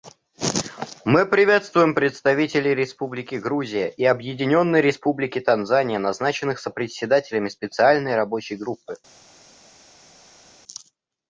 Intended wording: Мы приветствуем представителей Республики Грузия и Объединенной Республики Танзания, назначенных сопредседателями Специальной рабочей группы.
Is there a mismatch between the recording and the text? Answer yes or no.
no